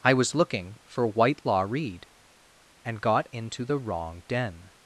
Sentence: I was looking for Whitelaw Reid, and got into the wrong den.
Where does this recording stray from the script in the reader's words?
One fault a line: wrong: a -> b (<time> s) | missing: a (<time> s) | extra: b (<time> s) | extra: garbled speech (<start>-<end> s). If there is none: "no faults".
no faults